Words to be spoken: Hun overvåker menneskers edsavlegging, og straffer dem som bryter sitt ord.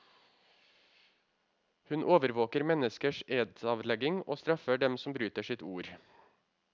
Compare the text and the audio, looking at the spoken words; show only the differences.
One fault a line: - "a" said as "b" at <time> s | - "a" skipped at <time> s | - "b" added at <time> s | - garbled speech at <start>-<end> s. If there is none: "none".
none